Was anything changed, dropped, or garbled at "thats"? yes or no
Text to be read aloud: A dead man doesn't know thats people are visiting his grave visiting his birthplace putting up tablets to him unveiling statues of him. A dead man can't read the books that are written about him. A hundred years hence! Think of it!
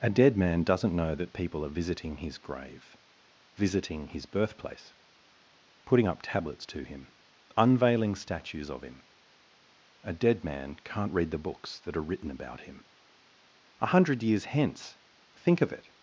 yes